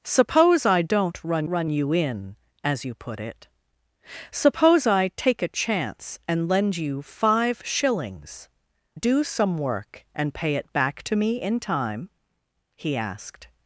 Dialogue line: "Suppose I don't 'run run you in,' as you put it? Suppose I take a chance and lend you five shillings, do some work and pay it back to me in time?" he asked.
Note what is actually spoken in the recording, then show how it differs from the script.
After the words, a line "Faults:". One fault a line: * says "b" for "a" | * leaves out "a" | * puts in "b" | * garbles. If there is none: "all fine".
"Suppose I don't 'run run you in,' as you put it? Suppose I take a chance and lend you five shillings, do some work and pay it back to me in time?" he asked.
Faults:
all fine